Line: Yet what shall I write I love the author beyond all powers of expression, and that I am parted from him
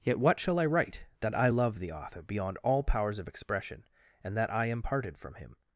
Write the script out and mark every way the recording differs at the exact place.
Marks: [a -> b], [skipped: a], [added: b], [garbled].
Yet what shall I write [added: that] I love the author beyond all powers of expression, and that I am parted from him